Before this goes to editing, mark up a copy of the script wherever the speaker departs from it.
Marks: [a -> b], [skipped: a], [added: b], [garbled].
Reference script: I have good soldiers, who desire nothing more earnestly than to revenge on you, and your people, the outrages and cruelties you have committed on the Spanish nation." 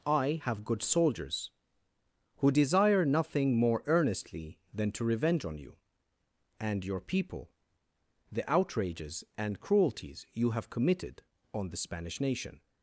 I have good soldiers, who desire nothing more earnestly than to revenge on you, and your people, the outrages and cruelties you have committed on the Spanish nation."